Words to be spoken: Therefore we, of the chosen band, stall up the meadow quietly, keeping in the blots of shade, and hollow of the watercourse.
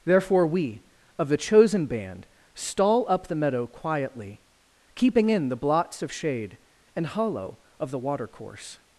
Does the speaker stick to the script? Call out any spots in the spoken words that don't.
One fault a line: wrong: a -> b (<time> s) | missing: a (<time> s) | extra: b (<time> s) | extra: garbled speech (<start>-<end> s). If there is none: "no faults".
no faults